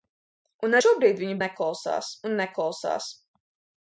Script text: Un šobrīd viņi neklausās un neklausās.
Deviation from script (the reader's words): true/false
false